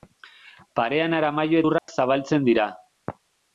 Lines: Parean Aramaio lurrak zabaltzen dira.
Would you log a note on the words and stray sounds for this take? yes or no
yes